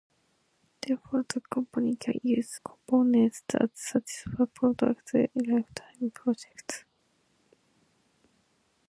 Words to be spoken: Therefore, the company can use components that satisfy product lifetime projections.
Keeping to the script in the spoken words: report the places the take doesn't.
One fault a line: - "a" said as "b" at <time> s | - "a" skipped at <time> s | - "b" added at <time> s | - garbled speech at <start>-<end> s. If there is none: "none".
none